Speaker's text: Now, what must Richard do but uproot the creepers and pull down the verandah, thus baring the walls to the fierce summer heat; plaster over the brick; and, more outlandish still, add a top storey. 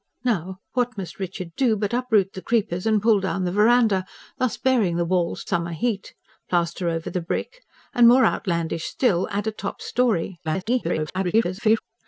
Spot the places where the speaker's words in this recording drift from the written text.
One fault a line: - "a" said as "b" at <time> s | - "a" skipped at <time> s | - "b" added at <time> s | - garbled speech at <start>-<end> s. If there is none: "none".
- "to the fierce" skipped at 5.5 s
- garbled speech at 10.4-11.8 s